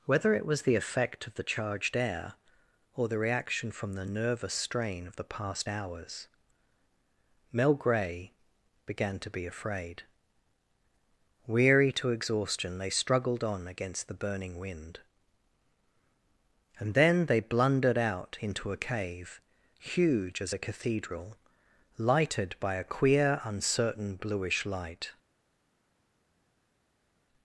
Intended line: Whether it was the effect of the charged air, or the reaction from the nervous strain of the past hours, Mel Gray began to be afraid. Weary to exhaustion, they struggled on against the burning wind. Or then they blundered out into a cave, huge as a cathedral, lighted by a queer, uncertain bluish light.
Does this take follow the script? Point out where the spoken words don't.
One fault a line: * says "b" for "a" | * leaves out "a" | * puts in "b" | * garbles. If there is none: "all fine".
* says "And" for "Or"